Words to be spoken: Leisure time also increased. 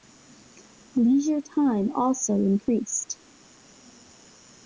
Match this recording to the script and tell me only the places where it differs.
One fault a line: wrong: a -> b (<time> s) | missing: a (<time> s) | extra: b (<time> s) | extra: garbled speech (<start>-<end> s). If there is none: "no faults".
no faults